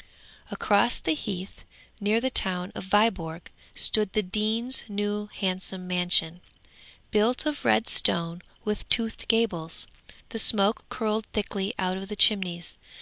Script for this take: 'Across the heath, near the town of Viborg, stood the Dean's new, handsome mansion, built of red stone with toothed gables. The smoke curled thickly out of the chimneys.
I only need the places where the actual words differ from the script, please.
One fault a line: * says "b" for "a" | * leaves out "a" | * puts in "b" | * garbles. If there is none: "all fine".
all fine